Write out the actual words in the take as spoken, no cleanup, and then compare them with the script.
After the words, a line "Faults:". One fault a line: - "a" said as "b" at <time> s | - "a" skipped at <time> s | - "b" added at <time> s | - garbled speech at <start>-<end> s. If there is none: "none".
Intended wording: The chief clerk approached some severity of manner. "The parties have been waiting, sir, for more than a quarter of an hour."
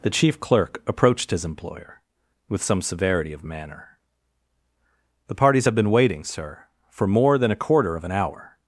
The chief clerk approached his employer, with some severity of manner. "The parties have been waiting, sir, for more than a quarter of an hour."
Faults:
- "his employer with" added at 1.3 s